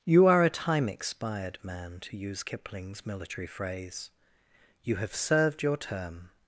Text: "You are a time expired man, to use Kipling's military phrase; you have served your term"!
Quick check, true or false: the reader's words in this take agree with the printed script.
true